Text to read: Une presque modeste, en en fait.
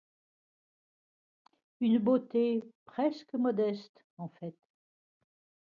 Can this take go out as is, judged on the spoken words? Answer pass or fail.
fail